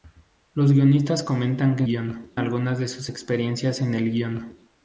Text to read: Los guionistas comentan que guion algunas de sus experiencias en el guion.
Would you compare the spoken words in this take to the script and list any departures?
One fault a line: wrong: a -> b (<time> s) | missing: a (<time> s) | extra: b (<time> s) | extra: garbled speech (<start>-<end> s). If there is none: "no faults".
no faults